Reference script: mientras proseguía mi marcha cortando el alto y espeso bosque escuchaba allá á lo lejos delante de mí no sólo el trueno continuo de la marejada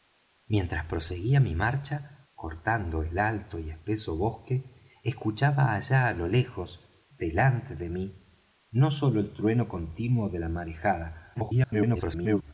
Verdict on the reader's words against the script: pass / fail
fail